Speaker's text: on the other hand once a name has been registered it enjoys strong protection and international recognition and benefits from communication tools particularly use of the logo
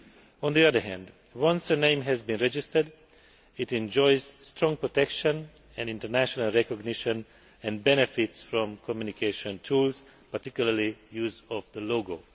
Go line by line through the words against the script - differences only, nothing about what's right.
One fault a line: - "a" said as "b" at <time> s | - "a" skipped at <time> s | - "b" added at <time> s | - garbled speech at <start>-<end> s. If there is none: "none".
none